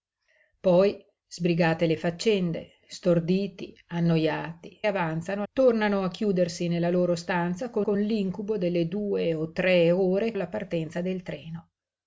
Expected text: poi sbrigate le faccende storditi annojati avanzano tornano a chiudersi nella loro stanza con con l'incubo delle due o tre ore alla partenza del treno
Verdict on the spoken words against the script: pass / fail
pass